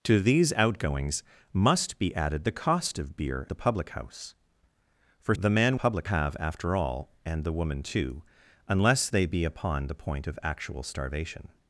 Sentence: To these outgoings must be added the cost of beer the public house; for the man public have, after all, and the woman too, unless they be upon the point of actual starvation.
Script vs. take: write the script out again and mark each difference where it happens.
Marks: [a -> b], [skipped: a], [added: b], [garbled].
To these outgoings must be added the cost of beer the public house; for the man public have, after all, and the woman too, unless they be upon the point of actual starvation.